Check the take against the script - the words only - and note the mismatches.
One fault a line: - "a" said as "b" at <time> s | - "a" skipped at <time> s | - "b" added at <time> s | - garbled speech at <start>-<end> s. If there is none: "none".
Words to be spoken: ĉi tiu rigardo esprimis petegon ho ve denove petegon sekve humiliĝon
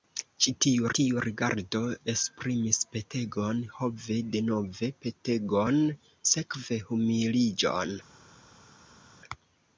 - "tiu" added at 1.0 s